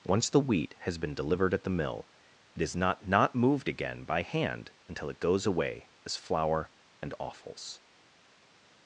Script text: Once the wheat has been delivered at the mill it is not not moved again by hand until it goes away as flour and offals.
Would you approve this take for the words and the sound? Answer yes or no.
yes